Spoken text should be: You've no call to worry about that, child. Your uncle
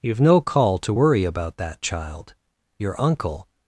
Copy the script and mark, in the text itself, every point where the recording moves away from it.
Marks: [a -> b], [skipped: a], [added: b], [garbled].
You've no call to worry about that, child. Your uncle